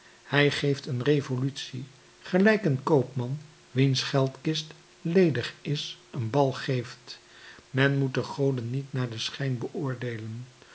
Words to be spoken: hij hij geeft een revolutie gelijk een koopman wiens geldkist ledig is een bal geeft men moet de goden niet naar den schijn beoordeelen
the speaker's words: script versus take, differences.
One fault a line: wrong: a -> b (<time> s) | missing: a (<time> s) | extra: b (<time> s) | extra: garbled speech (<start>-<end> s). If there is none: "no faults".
missing: hij (0.5 s)